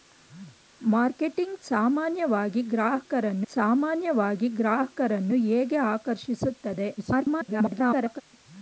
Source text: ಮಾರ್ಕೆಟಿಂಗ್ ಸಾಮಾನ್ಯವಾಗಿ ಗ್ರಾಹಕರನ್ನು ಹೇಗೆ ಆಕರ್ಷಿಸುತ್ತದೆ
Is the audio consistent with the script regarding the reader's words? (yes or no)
no